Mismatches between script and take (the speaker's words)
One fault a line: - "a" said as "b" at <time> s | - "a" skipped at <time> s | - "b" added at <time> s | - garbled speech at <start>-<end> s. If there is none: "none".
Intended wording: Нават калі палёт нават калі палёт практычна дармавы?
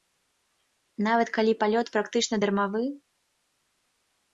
- "нават калі палёт" skipped at 1.9 s